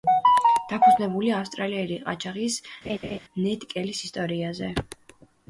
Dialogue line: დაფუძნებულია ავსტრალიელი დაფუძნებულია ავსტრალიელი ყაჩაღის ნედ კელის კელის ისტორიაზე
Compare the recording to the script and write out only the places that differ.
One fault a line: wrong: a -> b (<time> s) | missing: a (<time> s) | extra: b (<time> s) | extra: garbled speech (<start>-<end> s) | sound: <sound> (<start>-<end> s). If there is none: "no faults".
missing: დაფუძნებულია ავსტრალიელი (2.0 s)
sound: laugh (2.8-3.2 s)
missing: კელის (4.1 s)